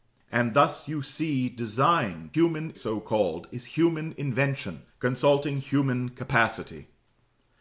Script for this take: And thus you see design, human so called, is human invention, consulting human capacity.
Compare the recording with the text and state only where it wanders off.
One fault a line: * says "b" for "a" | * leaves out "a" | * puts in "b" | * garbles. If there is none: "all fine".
all fine